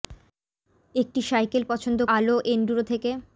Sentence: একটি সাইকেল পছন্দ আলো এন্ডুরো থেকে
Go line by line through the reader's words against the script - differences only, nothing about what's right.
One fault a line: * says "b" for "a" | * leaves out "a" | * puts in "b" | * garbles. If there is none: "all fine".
all fine